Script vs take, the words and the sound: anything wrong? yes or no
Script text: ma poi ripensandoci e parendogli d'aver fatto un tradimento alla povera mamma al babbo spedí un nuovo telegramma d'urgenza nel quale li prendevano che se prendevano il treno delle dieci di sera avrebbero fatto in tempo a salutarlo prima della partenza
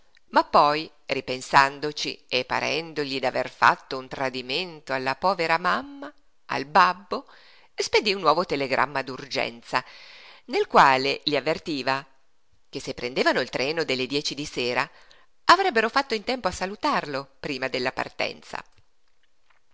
yes